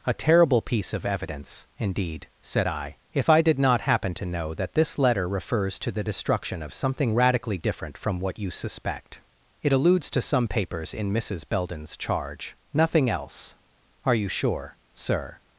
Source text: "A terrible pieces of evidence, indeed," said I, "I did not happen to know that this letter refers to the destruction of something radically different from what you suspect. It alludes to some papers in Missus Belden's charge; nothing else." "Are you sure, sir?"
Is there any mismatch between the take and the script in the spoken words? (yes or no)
yes